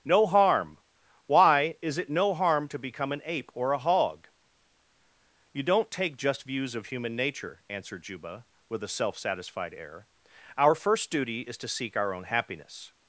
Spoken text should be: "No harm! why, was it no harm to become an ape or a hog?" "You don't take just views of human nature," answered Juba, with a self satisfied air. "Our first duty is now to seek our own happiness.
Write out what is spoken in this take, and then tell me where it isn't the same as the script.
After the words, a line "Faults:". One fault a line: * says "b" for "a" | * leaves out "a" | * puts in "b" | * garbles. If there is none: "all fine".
"No harm! why, is it no harm to become an ape or a hog?" "You don't take just views of human nature," answered Juba, with a self satisfied air. "Our first duty is to seek our own happiness.
Faults:
* says "is" for "was"
* leaves out "now"